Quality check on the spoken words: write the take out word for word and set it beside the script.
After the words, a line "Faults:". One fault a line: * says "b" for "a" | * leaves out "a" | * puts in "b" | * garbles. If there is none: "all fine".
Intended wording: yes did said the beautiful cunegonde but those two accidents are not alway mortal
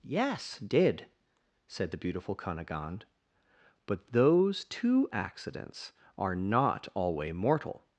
yes did said the beautiful cunegonde but those two accidents are not alway mortal
Faults:
all fine